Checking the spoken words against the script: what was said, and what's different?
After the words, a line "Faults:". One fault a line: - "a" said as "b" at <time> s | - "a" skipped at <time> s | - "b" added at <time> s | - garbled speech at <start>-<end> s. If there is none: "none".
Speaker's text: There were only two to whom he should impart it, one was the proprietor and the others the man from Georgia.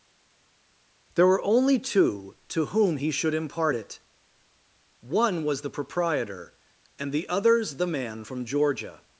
There were only two to whom he should impart it, one was the proprietor and the others the man from Georgia.
Faults:
none